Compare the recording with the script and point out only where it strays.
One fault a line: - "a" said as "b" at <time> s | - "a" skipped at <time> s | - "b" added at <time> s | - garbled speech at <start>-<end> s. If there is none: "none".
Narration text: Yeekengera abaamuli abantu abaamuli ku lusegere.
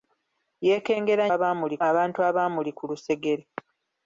none